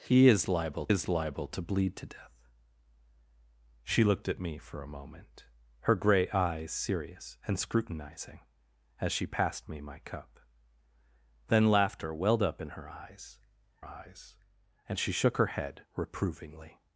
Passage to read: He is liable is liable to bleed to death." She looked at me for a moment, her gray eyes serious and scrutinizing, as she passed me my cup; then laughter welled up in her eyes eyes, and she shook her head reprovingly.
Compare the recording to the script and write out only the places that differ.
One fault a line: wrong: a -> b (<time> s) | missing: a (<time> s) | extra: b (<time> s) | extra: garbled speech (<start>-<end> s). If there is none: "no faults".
no faults